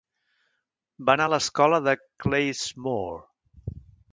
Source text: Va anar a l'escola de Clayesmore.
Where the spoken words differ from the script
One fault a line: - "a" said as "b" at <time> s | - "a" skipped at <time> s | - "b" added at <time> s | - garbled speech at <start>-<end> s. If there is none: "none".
none